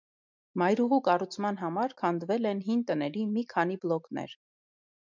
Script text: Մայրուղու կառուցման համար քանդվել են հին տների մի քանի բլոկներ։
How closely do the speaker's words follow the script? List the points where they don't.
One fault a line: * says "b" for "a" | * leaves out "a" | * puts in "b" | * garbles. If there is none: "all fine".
all fine